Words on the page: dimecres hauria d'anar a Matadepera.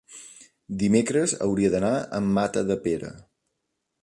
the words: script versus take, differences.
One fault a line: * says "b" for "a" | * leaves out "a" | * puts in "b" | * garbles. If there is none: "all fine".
all fine